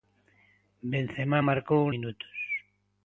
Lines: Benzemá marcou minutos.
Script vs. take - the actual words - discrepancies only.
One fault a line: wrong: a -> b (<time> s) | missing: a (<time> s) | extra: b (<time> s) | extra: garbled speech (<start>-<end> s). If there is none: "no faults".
no faults